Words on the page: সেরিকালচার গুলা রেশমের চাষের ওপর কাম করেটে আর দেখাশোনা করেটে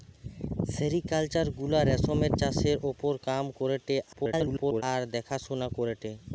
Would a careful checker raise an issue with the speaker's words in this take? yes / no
yes